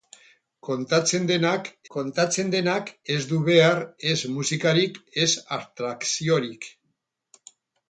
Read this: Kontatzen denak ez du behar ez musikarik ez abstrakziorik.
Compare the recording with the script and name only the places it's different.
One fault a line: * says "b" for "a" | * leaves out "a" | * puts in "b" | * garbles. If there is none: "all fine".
* puts in "kontatzen denak"